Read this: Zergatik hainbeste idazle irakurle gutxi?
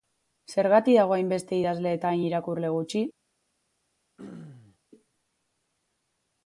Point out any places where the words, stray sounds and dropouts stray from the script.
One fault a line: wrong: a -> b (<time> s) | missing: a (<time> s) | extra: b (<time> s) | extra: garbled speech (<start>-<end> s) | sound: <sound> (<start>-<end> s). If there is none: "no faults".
extra: dago (1.0 s)
extra: eta hain (2.0 s)
sound: throat clearing (4.2-4.8 s)